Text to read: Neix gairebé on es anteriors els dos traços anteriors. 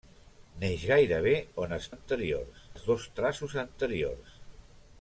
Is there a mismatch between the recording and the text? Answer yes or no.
no